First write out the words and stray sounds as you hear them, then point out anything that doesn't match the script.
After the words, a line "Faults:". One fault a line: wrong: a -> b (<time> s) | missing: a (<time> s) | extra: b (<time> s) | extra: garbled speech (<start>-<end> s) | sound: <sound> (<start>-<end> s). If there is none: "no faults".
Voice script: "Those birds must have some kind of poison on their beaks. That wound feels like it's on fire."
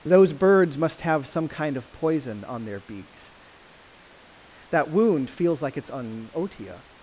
"Those birds must have some kind of poison on their beaks. That wound feels like it's on otia."
Faults:
wrong: fire -> otia (6.3 s)